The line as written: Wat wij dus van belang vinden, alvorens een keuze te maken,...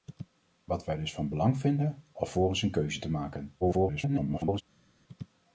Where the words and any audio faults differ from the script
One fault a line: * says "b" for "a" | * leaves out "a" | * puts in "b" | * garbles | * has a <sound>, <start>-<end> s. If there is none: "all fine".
* garbles